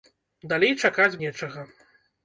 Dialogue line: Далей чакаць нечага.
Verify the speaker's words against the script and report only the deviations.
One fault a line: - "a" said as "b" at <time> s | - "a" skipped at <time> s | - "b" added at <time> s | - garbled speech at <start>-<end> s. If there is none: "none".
none